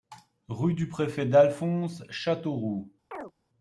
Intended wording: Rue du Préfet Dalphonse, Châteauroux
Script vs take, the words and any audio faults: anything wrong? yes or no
yes